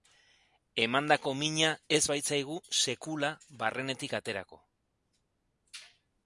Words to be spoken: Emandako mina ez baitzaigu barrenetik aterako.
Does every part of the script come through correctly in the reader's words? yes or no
no